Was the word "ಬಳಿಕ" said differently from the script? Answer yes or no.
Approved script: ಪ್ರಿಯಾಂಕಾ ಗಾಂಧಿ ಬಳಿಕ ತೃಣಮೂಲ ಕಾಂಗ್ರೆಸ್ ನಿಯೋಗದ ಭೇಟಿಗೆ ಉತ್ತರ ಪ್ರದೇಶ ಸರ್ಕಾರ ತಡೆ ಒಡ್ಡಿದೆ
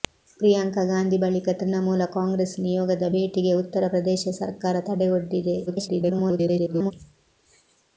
no